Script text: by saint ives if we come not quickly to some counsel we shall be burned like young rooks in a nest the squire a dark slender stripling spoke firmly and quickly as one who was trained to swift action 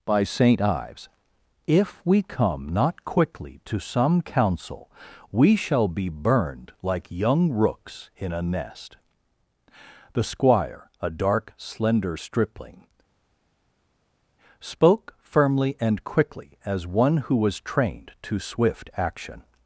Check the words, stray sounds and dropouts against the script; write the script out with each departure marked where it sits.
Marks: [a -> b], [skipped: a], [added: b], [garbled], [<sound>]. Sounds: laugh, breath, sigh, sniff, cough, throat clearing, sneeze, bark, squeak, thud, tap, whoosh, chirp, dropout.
by saint ives if we come not quickly to some counsel we shall be burned like young rooks in a nest the squire a dark slender stripling spoke firmly and quickly as one who was trained to swift action